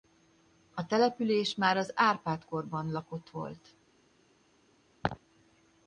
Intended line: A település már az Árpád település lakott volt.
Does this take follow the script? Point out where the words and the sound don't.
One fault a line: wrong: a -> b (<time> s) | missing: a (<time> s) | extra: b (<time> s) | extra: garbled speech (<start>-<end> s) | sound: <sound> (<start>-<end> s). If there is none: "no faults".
wrong: település -> korban (2.4 s)
sound: laugh (5.0-5.2 s)